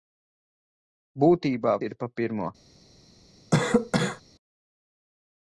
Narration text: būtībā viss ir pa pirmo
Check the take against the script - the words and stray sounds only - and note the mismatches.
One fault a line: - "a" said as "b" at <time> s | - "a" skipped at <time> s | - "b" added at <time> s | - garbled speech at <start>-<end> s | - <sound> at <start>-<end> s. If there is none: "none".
- "viss" skipped at 1.8 s
- cough at 3.5-4.2 s